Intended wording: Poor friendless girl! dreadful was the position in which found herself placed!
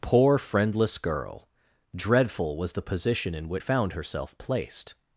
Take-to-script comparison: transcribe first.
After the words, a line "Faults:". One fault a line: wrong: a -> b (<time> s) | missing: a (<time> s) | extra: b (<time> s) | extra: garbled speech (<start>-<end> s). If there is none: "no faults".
Poor friendless girl! dreadful was the position in which found herself placed!
Faults:
no faults